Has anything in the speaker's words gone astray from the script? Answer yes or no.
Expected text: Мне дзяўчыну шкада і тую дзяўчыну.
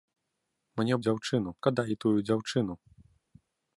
no